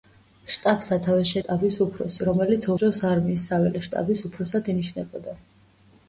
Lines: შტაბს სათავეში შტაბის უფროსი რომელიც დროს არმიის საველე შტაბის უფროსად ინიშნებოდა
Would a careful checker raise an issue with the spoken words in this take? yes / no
no